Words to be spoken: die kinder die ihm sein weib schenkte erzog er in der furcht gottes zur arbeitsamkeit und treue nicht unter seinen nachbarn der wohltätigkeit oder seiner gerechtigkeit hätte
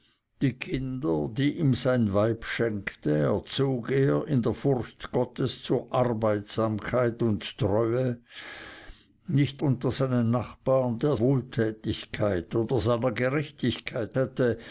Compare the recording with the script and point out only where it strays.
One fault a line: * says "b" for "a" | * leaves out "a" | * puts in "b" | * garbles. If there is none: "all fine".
all fine